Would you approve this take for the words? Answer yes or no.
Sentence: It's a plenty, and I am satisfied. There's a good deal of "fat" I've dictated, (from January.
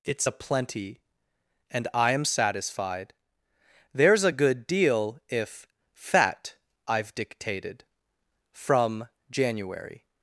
no